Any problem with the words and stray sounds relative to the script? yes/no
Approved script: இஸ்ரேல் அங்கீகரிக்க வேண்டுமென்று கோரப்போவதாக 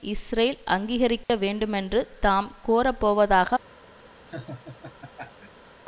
yes